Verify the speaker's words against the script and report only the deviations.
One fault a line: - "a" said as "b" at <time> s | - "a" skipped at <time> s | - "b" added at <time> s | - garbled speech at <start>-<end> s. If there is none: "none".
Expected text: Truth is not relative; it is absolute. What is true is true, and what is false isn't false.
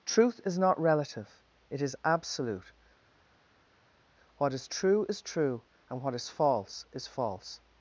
- "isn't" said as "is" at 6.9 s